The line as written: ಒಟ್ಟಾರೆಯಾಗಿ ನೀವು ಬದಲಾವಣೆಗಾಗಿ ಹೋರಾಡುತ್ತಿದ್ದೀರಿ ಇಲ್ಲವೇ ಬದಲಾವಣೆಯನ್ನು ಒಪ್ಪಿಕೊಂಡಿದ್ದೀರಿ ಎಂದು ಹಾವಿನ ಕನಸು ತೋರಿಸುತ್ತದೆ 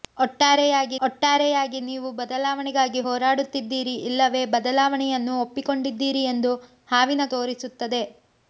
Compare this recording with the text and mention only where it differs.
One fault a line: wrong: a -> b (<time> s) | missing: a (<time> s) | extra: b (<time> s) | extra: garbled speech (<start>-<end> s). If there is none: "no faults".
extra: ಒಟ್ಟಾರೆಯಾಗಿ (1.1 s)
missing: ಕನಸು (7.3 s)